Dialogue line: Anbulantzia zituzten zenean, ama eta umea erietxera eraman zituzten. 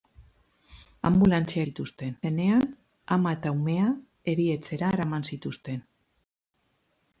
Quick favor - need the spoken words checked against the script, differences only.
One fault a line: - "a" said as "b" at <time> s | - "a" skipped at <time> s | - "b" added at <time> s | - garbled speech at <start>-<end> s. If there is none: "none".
none